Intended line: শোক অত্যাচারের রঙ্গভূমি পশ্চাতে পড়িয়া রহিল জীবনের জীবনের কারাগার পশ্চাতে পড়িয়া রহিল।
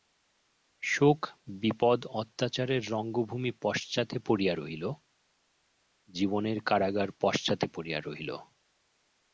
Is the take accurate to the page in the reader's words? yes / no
no